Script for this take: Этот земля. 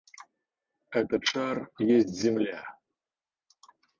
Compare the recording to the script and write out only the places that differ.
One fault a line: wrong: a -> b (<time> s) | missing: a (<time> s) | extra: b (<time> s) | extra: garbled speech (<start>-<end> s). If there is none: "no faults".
extra: шар есть (1.2 s)